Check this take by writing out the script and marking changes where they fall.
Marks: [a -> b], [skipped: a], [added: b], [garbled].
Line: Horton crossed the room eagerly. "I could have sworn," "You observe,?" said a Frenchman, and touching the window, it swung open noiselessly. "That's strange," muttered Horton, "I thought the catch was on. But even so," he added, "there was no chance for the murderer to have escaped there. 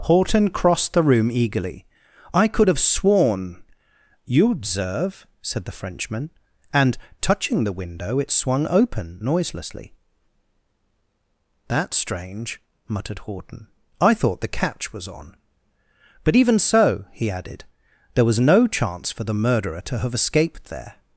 Horton crossed the room eagerly. "I could have sworn," "You observe,?" said [a -> the] Frenchman, and touching the window, it swung open noiselessly. "That's strange," muttered Horton, "I thought the catch was on. But even so," he added, "there was no chance for the murderer to have escaped there.